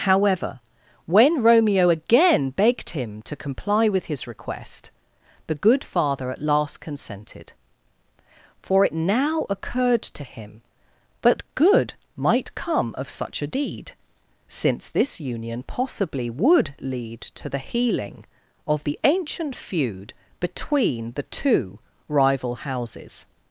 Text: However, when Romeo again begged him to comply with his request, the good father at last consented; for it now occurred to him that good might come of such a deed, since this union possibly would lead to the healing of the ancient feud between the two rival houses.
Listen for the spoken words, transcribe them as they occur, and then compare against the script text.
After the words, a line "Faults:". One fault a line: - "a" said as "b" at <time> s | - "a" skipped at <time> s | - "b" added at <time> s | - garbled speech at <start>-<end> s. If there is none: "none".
However, when Romeo again begged him to comply with his request, the good father at last consented; for it now occurred to him that good might come of such a deed, since this union possibly would lead to the healing of the ancient feud between the two rival houses.
Faults:
none